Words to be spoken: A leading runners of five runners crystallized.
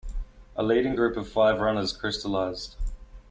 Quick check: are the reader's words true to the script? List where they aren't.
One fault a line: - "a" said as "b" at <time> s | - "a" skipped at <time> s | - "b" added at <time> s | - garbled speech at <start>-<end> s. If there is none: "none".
- "runners" said as "group" at 0.9 s